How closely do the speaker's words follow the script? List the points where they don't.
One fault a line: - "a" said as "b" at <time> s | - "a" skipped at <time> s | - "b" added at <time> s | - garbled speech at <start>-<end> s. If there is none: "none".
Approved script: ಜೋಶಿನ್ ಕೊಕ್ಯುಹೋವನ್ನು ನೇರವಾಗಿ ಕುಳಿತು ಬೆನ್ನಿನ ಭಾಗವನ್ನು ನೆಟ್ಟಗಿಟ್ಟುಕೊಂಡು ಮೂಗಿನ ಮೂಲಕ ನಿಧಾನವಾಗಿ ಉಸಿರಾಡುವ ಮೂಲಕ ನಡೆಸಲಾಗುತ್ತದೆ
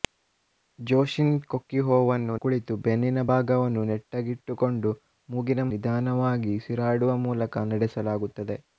- "ನೇರವಾಗಿ" skipped at 2.4 s
- "ಮೂಲಕ" skipped at 5.6 s